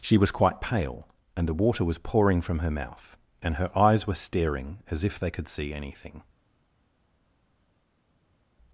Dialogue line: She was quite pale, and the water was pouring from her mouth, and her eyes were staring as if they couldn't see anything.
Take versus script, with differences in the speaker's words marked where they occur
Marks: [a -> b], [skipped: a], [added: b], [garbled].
She was quite pale, and the water was pouring from her mouth, and her eyes were staring as if they [couldn't -> could] see anything.